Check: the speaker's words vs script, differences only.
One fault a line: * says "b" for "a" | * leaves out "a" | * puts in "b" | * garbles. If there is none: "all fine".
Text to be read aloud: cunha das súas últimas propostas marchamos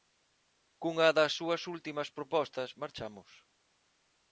all fine